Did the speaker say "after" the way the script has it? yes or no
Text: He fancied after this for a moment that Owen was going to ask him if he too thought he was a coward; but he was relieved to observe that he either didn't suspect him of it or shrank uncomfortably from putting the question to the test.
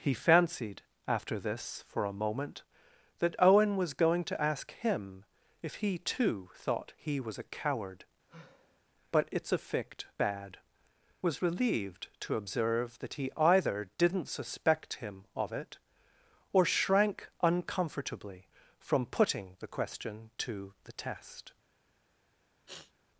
yes